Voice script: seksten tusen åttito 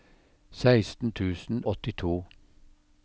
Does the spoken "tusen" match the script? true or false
true